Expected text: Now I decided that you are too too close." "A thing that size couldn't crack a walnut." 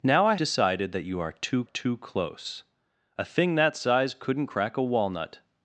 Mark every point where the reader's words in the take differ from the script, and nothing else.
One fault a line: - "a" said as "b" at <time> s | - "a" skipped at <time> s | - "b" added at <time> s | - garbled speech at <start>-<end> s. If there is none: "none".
none